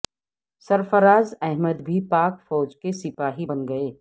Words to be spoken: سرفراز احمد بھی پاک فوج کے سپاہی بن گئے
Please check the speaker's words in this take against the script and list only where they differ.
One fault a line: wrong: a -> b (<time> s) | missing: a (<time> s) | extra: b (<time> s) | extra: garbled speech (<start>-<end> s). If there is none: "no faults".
no faults